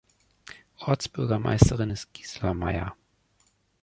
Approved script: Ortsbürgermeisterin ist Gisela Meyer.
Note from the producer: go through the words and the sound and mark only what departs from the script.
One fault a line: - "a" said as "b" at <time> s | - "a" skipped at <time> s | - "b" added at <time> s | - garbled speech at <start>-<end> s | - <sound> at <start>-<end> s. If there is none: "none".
none